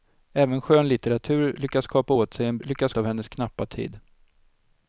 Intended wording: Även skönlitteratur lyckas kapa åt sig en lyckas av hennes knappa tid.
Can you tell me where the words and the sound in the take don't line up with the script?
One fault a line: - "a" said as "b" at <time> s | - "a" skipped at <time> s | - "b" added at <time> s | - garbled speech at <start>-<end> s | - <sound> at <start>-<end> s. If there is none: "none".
none